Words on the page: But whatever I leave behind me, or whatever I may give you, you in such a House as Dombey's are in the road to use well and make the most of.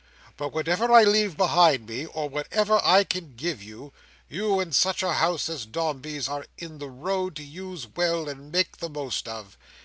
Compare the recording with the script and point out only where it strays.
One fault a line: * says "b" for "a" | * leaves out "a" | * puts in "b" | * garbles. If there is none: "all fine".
* says "can" for "may"